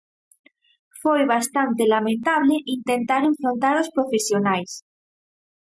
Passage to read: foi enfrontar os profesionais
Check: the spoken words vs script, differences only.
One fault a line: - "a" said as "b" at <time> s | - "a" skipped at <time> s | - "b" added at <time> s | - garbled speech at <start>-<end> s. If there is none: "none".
- "bastante lamentable intentar" added at 1.3 s